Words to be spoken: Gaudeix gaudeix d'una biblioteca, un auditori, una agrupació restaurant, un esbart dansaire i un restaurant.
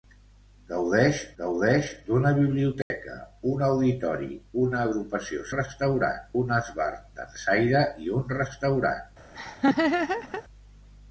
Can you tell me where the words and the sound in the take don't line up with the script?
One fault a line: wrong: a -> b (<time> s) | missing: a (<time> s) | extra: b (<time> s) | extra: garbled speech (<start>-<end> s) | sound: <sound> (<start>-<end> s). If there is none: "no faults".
sound: dropout (2.8-2.9 s)
sound: laugh (9.3-10.4 s)